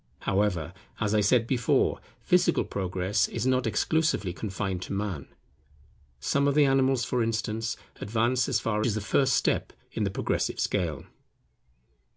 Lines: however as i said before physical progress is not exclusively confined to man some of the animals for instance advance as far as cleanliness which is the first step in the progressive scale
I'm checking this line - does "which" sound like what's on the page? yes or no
no